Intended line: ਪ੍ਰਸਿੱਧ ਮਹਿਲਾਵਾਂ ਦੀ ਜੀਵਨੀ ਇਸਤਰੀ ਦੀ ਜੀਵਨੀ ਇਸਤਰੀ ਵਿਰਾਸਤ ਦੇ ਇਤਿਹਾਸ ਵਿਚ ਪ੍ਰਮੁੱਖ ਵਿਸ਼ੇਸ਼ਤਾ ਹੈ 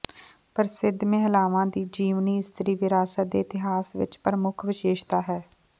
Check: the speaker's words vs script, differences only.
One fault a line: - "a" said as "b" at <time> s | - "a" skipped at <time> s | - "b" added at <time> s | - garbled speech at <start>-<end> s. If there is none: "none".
- "ਦੀ ਜੀਵਨੀ ਇਸਤਰੀ" skipped at 2.8 s